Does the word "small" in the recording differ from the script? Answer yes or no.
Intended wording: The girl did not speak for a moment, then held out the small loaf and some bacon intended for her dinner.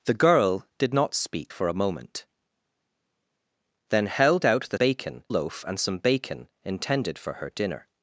yes